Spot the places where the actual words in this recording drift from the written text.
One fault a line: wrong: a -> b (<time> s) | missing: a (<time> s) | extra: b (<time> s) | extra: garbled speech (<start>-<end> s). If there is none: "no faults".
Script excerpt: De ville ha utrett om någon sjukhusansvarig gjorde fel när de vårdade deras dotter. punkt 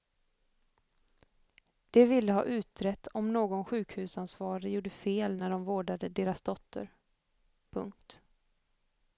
no faults